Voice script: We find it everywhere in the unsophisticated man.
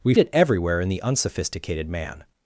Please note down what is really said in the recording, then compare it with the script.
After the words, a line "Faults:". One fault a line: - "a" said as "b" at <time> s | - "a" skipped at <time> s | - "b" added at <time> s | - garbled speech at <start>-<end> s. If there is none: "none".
We it everywhere in the unsophisticated man.
Faults:
- "find" skipped at 0.1 s